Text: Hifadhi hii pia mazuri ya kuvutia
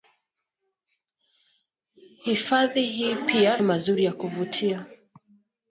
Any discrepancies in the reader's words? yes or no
no